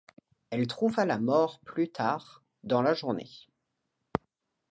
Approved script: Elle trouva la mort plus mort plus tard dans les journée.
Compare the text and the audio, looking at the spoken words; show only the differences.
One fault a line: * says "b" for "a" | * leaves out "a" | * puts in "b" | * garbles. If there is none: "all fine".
* leaves out "mort plus"
* says "la" for "les"